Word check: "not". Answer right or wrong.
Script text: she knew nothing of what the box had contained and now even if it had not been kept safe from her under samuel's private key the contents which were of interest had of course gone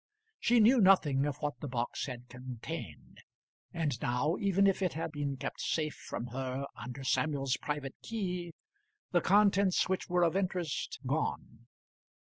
wrong